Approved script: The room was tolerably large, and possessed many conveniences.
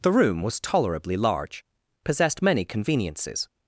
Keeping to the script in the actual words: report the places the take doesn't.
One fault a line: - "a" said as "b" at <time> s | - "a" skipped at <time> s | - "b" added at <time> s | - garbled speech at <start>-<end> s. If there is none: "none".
- "and" skipped at 1.6 s